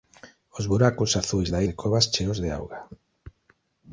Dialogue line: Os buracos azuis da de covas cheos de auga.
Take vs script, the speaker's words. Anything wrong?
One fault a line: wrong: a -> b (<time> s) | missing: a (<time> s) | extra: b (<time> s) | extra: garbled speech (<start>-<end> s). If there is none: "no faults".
no faults